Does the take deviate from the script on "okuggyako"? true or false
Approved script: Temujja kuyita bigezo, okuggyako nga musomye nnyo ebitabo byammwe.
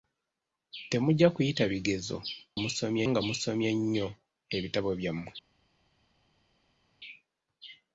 true